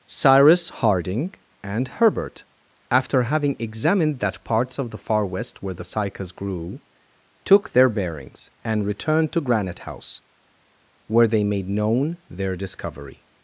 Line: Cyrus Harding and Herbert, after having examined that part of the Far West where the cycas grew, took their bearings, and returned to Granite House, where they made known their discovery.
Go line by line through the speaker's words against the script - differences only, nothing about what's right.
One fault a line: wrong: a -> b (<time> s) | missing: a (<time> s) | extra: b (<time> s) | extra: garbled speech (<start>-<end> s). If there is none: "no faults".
wrong: part -> parts (4.4 s)